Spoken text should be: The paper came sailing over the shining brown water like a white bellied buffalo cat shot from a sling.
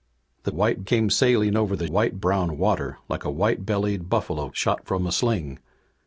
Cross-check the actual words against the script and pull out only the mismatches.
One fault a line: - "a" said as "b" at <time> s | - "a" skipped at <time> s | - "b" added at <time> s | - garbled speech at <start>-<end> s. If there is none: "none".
- "paper" said as "white" at 0.5 s
- "shining" said as "white" at 1.8 s
- "cat" skipped at 4.5 s